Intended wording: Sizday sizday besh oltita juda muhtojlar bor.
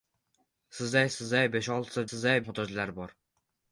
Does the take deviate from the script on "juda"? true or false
true